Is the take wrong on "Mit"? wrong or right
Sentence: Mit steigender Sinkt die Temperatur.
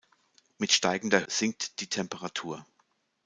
right